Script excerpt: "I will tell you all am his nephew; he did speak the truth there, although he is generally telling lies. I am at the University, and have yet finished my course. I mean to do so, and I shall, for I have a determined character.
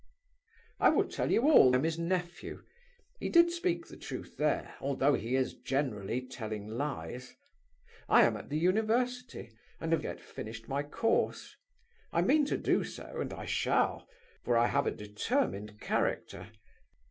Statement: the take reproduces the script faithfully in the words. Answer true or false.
true